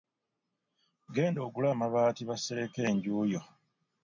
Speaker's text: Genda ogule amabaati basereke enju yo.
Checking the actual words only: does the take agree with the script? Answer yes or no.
yes